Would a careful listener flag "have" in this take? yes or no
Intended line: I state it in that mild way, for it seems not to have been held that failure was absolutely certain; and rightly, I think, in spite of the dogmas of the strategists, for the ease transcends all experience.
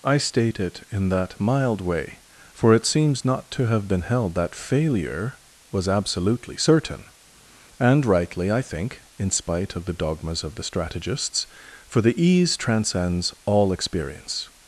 no